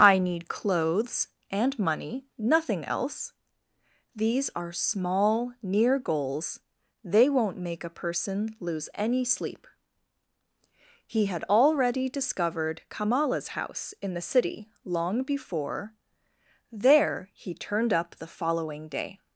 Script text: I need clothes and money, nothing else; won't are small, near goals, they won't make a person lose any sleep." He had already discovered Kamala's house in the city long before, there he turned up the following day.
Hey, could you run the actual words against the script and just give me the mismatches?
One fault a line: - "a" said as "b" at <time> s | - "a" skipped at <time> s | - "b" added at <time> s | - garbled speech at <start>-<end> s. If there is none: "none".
- "won't" said as "these" at 4.2 s